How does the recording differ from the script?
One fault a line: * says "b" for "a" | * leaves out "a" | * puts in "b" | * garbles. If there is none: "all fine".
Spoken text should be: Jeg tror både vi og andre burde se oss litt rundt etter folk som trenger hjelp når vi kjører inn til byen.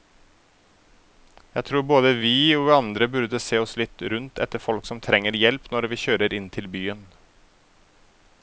all fine